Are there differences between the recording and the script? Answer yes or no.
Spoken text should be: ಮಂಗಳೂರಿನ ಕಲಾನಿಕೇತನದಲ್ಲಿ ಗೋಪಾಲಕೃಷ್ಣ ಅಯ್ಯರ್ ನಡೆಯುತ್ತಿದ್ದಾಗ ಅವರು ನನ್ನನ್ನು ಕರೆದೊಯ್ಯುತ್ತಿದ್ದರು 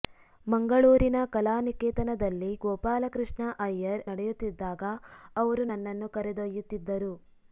no